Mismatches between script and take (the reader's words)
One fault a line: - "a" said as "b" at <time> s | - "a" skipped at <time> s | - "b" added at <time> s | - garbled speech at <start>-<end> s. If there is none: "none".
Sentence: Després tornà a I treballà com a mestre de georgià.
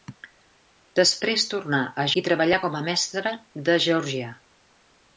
none